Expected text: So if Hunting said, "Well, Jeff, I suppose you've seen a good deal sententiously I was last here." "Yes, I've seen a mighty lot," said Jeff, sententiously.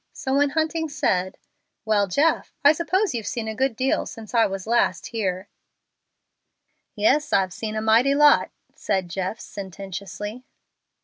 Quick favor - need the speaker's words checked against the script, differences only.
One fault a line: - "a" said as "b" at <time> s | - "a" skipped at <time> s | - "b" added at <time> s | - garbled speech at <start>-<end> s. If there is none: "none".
- "if" said as "when" at 0.3 s
- "sententiously" said as "since" at 4.1 s